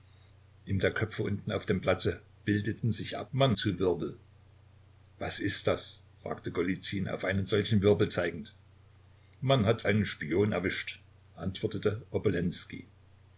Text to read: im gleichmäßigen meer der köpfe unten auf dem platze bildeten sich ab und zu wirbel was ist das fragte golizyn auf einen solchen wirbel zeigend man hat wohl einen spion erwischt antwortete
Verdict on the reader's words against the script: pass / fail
fail